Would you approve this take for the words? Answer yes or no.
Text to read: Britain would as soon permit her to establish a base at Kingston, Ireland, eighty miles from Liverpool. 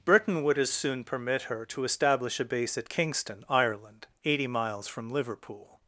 yes